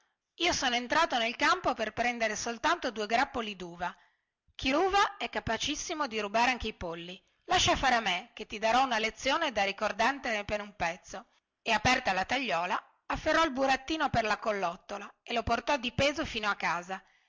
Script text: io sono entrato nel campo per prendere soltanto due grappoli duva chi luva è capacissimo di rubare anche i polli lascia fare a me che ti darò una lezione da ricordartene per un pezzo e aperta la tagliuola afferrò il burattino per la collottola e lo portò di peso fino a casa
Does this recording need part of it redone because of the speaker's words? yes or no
no